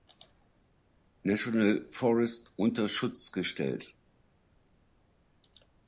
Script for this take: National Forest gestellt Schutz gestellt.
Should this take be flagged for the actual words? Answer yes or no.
yes